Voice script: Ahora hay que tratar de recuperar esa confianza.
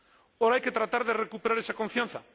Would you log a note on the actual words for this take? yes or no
no